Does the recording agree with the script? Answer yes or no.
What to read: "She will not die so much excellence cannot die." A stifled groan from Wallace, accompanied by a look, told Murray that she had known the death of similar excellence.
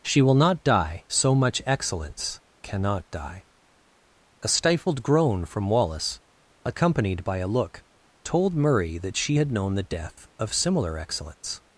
yes